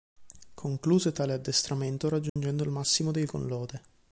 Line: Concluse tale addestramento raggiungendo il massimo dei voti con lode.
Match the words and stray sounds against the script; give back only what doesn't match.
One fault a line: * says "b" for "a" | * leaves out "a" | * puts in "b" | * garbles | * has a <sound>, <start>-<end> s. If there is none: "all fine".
* has a dropout, 2.3-2.4 s
* leaves out "voti"